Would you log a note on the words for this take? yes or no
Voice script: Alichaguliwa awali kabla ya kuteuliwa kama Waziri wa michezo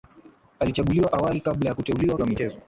yes